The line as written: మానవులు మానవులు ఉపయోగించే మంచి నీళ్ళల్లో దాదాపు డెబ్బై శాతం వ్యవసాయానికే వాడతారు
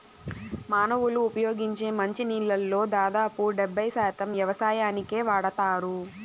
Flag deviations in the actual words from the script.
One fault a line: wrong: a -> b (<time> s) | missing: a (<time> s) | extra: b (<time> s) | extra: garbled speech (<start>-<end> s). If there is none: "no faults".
missing: మానవులు (1.2 s)